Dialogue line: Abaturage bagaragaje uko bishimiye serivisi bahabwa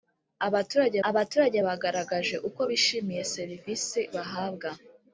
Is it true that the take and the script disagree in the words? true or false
true